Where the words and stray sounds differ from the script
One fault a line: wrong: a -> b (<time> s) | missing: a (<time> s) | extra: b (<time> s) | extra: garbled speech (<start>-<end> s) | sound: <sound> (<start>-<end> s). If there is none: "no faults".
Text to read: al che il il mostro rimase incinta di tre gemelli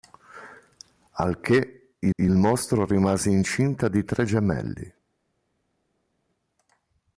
no faults